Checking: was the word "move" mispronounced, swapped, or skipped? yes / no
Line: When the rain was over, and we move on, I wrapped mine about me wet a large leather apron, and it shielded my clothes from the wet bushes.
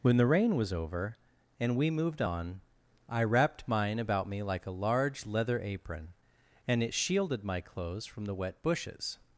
yes